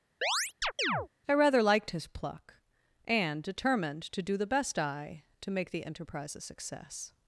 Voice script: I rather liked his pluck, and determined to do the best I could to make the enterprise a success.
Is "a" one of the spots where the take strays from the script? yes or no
no